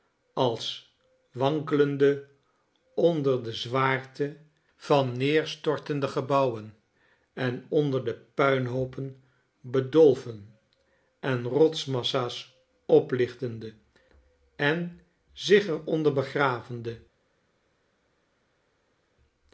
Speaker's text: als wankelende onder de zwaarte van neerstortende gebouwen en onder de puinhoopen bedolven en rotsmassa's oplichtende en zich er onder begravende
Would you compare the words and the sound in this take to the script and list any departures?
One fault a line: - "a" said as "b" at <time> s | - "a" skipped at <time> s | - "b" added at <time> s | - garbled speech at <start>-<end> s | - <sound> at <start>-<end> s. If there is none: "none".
none